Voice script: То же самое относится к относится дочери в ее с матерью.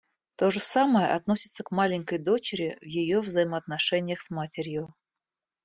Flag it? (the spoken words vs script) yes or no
yes